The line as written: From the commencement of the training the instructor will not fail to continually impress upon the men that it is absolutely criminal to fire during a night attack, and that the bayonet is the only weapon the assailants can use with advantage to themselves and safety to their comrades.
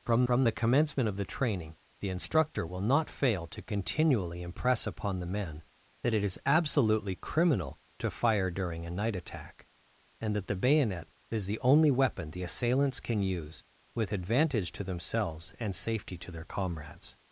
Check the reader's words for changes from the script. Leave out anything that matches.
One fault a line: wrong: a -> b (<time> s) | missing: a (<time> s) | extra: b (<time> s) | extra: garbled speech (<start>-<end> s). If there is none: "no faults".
extra: from (0.2 s)